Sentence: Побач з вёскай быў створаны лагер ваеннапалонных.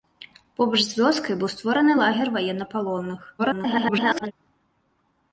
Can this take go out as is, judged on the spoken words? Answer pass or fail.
fail